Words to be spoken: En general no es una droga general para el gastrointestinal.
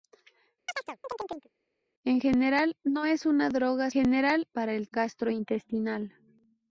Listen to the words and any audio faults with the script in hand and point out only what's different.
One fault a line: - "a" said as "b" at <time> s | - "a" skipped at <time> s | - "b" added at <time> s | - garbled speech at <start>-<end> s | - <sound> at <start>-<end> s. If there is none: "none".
- chirp at 0.7-1.5 s